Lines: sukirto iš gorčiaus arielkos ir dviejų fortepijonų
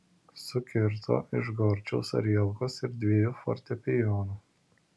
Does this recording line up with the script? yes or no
yes